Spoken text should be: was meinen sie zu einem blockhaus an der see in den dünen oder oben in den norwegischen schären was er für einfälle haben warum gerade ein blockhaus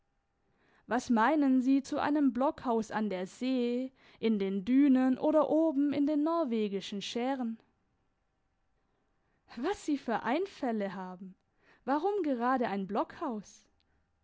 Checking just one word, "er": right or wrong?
wrong